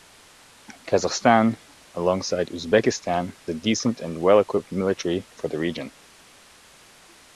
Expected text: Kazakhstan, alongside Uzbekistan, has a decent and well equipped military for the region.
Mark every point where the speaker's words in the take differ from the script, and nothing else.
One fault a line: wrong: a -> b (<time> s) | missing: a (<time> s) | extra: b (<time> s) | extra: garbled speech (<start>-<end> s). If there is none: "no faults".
missing: has (3.3 s)